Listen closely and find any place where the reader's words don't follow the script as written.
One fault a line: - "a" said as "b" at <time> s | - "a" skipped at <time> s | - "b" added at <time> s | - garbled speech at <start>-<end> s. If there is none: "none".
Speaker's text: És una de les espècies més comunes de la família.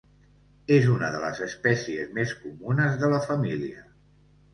none